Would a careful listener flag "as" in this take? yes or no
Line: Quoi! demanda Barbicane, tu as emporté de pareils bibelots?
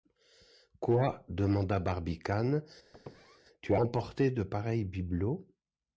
yes